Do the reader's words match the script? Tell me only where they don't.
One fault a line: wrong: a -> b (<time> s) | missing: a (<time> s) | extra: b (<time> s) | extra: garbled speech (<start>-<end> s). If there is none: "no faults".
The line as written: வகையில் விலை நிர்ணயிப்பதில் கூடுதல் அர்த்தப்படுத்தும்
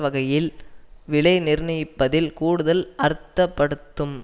no faults